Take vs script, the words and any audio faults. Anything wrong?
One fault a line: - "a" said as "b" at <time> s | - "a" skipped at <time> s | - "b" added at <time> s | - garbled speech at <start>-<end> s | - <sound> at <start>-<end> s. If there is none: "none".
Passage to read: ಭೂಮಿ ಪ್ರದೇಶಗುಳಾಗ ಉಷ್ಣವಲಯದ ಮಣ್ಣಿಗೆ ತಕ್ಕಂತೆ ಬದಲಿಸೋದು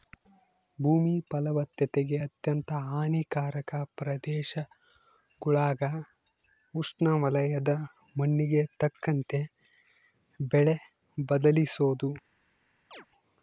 - "ಫಲವತ್ತತೆಗೆ ಅತ್ಯಂತ ಹಾನಿಕಾರಕ" added at 1.3 s
- "ಬೆಳೆ" added at 10.5 s
- chirp at 12.9-13.1 s